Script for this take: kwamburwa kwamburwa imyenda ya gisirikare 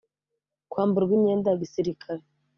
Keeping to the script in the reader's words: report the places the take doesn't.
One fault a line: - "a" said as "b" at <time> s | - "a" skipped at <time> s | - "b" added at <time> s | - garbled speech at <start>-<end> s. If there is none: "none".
- "kwamburwa" skipped at 1.1 s